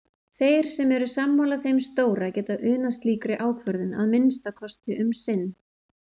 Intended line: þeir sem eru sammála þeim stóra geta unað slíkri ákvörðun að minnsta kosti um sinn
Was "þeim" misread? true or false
false